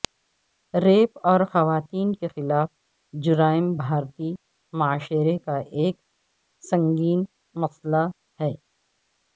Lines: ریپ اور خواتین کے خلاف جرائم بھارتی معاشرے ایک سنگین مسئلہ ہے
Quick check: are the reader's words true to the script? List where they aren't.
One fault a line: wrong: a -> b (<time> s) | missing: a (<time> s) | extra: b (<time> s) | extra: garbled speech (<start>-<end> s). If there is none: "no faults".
extra: کا (5.4 s)